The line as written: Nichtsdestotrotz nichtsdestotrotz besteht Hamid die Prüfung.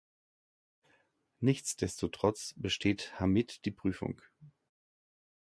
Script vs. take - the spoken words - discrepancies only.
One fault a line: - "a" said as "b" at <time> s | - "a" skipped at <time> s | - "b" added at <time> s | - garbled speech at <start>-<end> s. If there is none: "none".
- "nichtsdestotrotz" skipped at 2.5 s